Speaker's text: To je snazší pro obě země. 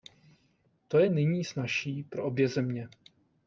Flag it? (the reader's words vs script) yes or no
yes